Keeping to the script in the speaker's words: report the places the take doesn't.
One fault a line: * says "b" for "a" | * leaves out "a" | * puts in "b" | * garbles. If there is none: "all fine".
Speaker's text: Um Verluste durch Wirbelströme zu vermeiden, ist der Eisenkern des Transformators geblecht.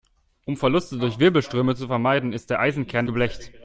* leaves out "des Transformators"